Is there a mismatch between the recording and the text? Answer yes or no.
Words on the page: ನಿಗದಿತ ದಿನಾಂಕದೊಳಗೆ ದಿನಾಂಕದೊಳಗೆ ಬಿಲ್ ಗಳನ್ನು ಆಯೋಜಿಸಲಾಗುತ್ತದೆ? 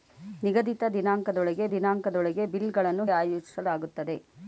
no